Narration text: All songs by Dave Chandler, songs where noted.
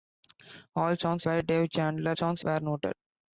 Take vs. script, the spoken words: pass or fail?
pass